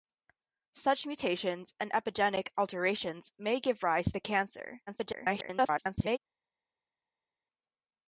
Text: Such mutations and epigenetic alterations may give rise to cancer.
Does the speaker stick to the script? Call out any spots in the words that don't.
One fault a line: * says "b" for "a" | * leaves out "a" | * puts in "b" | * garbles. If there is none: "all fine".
* garbles